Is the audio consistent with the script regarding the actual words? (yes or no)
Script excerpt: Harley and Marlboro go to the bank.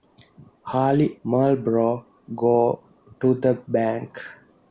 no